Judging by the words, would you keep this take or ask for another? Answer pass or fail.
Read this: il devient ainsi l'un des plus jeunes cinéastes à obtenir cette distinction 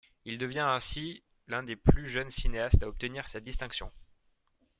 pass